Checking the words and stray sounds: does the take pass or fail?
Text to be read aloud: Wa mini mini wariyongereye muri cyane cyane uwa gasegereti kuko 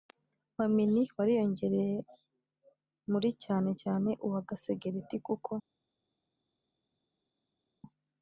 fail